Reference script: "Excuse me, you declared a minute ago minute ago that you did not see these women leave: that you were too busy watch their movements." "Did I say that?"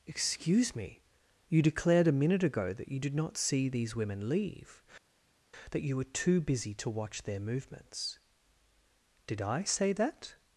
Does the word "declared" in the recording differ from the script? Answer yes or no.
no